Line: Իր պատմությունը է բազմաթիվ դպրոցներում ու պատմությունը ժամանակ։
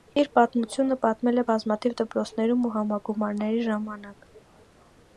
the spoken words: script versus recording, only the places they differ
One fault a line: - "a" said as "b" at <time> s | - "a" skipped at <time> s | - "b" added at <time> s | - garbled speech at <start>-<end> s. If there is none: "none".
- "պատմել" added at 1.1 s
- "պատմությունը" said as "համագումարների" at 2.8 s